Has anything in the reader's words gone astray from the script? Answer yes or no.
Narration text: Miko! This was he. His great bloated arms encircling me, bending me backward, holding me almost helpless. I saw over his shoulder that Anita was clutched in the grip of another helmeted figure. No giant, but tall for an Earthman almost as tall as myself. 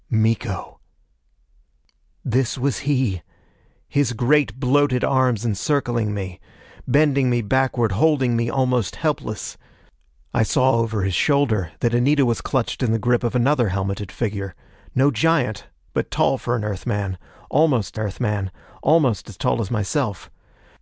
yes